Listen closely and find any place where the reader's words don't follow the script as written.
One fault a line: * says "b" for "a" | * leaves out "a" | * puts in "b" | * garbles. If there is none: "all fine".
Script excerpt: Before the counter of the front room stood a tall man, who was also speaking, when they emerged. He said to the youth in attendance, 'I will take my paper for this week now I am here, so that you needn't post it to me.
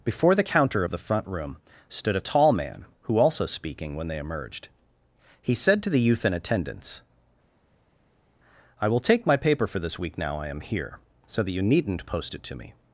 * leaves out "was"